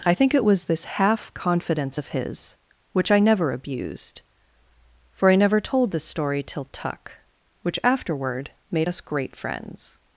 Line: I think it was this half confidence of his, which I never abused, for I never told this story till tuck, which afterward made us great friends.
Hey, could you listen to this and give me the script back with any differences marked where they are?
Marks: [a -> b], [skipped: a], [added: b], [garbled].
I think it was this half confidence of his, which I never abused, for I never told this story till tuck, which afterward made us great friends.